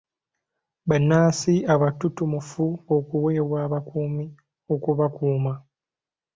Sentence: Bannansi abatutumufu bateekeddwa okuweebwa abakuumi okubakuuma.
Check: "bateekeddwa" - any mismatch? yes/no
yes